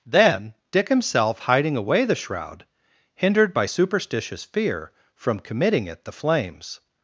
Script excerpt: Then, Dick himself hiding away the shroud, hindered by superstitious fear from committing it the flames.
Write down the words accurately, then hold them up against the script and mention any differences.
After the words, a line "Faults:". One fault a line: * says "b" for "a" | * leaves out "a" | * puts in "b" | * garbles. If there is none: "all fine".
Then, Dick himself hiding away the shroud, hindered by superstitious fear from committing it the flames.
Faults:
all fine